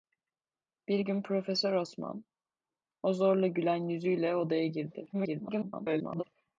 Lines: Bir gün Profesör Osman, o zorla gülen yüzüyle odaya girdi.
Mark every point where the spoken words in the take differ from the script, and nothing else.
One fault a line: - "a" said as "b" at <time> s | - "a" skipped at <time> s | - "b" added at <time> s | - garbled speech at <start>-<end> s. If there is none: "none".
- garbled speech at 5.1-6.2 s